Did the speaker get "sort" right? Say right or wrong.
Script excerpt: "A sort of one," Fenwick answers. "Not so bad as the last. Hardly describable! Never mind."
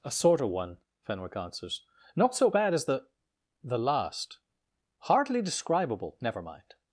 right